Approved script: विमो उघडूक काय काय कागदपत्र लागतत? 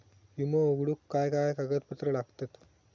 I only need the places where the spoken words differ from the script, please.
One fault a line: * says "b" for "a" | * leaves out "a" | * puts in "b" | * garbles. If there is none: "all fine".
all fine